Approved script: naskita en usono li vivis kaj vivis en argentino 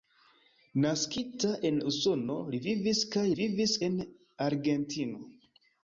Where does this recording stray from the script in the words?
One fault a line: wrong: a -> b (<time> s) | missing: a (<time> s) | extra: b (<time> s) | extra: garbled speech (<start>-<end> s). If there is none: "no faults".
no faults